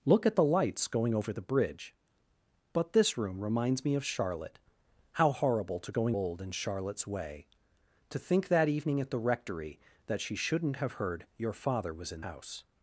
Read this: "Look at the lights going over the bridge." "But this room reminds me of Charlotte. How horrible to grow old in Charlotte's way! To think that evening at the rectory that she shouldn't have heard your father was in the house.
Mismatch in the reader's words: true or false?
true